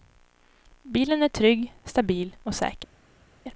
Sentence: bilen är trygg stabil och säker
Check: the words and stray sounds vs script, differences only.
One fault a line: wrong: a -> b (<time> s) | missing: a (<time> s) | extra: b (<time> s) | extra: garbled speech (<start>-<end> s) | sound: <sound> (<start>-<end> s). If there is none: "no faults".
no faults